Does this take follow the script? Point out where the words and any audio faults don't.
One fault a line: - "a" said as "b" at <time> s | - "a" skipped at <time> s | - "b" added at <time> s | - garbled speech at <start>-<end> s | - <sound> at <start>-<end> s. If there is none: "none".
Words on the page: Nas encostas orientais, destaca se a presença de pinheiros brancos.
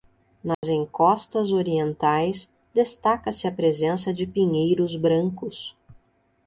- dropout at 0.5-0.6 s